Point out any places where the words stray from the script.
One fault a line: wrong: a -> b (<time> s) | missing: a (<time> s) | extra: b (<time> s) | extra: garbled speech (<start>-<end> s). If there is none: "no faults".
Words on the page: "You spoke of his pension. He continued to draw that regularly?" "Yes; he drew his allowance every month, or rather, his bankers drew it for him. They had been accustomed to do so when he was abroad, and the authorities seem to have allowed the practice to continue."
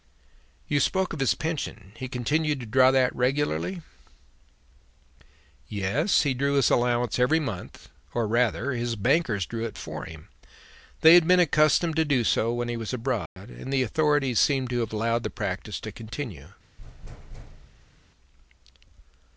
no faults